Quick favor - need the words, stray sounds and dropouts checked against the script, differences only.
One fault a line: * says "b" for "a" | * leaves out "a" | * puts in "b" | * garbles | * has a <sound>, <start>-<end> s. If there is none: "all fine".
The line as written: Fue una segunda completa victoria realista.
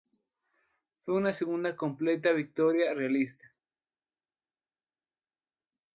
all fine